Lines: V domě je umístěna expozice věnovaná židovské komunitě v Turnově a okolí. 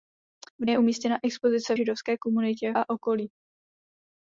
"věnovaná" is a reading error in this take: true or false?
true